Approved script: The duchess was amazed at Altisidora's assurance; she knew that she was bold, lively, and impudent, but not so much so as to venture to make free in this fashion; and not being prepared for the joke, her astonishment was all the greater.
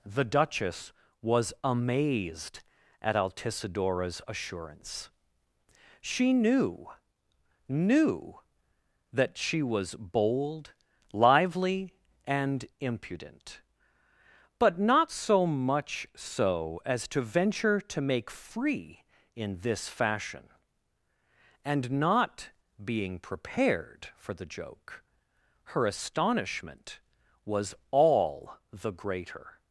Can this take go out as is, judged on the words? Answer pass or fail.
fail